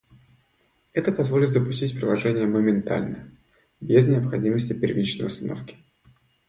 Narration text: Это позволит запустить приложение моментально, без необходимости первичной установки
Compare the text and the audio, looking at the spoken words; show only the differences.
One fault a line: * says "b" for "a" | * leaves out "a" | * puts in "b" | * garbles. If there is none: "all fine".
all fine